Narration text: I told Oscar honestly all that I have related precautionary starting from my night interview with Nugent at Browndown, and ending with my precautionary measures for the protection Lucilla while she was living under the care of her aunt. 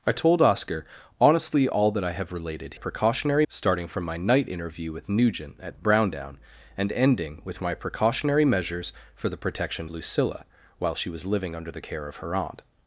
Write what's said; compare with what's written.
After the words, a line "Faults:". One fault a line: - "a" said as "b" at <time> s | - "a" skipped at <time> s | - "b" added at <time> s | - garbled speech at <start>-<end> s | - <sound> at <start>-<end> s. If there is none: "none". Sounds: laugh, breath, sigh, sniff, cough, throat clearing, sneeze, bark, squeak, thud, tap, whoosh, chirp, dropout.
I told Oscar honestly all that I have related precautionary starting from my night interview with Nugent at Browndown, and ending with my precautionary measures for the protection Lucilla while she was living under the care of her aunt.
Faults:
none